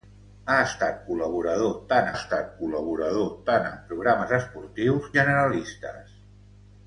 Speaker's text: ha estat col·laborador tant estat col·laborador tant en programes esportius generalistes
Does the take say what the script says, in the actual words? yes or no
yes